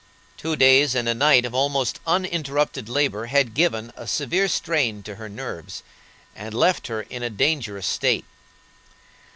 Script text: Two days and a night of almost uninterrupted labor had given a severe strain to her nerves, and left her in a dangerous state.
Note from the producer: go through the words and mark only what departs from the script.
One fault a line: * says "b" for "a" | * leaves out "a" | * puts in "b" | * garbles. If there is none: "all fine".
all fine